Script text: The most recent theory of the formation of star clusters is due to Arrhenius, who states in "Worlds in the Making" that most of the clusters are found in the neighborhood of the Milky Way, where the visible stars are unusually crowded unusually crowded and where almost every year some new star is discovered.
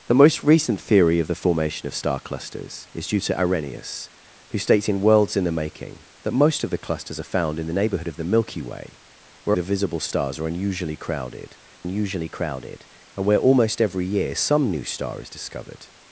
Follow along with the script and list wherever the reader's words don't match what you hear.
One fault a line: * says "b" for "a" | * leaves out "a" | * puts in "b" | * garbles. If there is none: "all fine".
all fine